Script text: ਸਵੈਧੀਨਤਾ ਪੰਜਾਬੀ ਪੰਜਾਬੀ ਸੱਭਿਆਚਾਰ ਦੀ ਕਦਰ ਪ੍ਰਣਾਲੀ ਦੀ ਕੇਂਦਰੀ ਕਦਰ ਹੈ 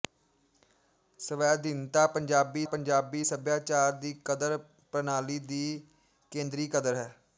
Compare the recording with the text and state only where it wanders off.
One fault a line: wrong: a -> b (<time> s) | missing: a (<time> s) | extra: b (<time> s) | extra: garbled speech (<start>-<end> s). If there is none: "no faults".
no faults